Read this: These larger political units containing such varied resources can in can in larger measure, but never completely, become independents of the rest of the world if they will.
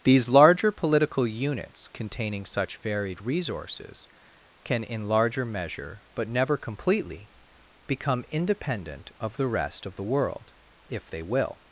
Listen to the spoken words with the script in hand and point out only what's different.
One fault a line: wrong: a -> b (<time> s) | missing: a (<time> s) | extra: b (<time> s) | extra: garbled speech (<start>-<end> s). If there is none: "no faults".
missing: can in (5.1 s)
wrong: independents -> independent (8.3 s)